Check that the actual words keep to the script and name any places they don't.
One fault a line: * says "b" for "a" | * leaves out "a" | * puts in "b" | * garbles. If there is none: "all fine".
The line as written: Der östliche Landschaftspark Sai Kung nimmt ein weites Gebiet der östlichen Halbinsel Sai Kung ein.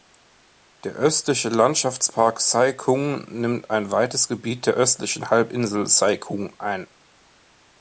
all fine